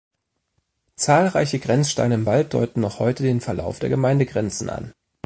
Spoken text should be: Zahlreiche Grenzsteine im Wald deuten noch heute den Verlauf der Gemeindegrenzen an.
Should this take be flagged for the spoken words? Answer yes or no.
no